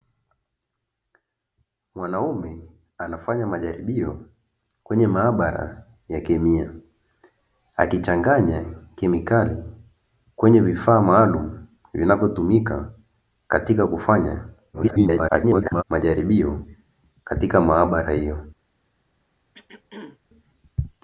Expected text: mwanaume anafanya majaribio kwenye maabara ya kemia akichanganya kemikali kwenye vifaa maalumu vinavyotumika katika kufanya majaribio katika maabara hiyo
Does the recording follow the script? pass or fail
fail